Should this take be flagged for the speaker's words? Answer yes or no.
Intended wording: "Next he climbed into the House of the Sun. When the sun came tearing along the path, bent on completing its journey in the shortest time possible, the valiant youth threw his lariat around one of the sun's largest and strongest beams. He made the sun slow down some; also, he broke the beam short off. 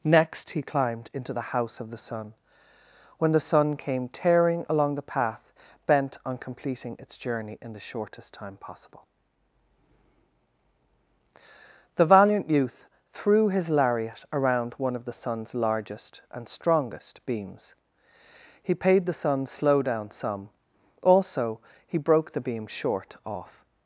yes